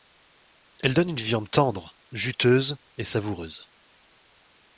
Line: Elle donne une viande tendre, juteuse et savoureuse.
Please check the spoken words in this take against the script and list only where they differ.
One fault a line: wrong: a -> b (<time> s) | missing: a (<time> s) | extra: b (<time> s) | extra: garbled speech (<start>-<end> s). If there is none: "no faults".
no faults